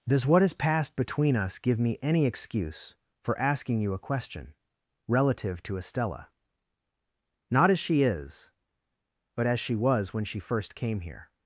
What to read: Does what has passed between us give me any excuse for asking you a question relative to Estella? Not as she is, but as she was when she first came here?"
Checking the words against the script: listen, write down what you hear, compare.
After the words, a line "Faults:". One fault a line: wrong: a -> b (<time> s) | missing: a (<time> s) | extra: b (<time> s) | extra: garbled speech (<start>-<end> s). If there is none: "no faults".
Does what has passed between us give me any excuse for asking you a question relative to Estella? Not as she is, but as she was when she first came here?"
Faults:
no faults